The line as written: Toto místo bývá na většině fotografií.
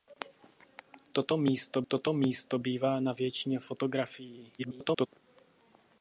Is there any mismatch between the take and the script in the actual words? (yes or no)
yes